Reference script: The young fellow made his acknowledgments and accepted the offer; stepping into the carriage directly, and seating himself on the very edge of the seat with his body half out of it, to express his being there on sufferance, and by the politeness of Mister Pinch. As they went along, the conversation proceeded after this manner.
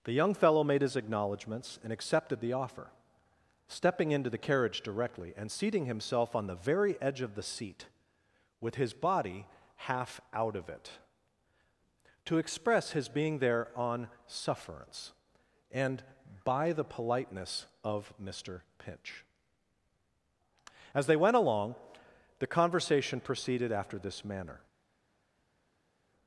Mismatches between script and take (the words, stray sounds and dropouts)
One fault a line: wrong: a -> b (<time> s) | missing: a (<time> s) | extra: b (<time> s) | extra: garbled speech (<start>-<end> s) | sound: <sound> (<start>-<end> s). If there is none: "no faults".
no faults